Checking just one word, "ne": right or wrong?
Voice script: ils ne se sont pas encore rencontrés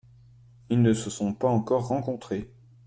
right